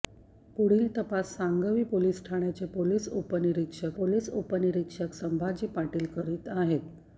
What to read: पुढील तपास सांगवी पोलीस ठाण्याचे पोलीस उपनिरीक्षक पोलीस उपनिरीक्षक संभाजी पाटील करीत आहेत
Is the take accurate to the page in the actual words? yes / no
yes